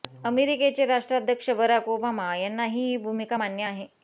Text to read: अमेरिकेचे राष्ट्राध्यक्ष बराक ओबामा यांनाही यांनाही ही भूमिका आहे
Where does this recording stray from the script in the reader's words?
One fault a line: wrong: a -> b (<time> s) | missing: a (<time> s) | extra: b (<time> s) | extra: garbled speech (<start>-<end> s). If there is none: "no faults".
missing: यांनाही (2.9 s)
extra: मान्य (3.3 s)